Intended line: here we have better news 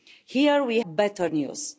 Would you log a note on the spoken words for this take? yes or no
yes